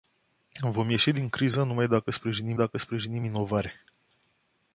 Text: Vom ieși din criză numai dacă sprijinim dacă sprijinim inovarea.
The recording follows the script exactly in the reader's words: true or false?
true